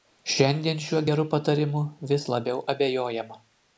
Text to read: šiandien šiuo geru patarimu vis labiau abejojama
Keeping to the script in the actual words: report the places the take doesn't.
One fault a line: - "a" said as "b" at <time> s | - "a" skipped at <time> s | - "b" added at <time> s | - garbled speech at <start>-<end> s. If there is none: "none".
none